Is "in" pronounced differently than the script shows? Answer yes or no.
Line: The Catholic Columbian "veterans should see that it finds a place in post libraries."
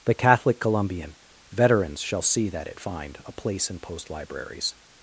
no